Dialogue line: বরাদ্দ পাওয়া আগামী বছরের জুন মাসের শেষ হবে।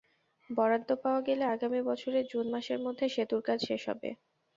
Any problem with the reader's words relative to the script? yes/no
yes